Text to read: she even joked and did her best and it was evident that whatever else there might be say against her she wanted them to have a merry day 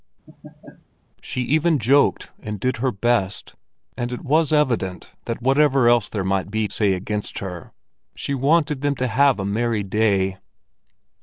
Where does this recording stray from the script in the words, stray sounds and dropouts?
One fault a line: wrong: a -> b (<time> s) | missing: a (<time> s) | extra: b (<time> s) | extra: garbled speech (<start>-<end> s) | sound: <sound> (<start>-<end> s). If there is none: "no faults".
sound: laugh (0.3-0.9 s)